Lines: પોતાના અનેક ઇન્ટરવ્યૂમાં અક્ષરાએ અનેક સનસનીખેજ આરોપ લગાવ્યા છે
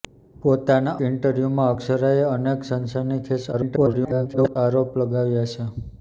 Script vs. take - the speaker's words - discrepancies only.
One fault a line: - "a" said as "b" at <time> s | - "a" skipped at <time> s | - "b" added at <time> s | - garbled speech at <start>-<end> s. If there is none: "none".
- "અનેક" skipped at 0.9 s
- garbled speech at 3.5-4.6 s